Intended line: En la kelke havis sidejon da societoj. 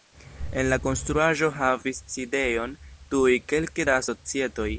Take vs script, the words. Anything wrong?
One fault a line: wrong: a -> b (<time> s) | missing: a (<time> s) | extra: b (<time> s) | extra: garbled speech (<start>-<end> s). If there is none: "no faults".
wrong: kelke -> konstruaĵo (0.8 s)
extra: tuj kelke (3.1 s)